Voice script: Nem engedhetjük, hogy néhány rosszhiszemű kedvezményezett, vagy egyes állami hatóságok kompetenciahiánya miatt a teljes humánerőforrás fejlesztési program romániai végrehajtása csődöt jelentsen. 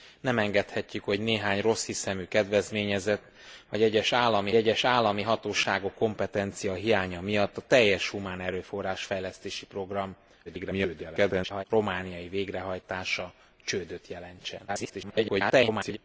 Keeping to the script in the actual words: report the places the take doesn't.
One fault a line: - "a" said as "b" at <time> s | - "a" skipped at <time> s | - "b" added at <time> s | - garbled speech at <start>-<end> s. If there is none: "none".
- "egyes állami" added at 4.6 s
- garbled speech at 10.4-11.6 s
- garbled speech at 14.7-16.0 s